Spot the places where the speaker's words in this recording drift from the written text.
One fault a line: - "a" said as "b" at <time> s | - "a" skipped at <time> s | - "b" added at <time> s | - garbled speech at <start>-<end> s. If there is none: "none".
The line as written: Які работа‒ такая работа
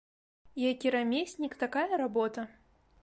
- "работа" said as "рамеснік" at 0.9 s